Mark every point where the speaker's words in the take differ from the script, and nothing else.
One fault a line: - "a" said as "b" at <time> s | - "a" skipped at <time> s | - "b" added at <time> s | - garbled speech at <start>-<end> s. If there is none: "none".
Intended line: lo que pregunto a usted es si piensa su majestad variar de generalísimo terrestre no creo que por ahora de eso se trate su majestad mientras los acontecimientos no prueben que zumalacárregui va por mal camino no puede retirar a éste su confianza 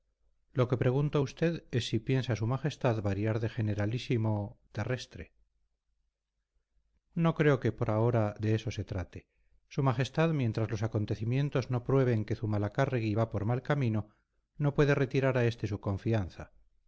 none